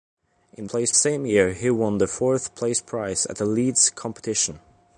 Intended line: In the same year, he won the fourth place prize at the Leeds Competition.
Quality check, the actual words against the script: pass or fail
fail